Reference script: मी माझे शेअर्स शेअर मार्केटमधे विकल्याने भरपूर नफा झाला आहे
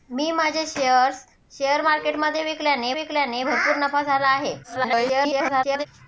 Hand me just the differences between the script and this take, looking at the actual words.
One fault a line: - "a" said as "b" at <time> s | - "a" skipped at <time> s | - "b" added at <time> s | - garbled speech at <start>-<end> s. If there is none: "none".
- "विकल्याने" added at 2.9 s
- garbled speech at 4.6-5.9 s